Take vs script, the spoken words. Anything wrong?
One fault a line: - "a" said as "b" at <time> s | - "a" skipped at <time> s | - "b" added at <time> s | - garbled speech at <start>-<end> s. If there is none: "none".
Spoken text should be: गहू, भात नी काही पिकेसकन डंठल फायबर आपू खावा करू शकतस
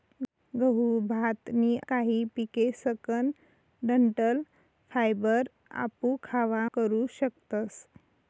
none